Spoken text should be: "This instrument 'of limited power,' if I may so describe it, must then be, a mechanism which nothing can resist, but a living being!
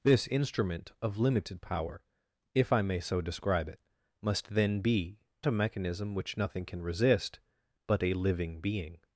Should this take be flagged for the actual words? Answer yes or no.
no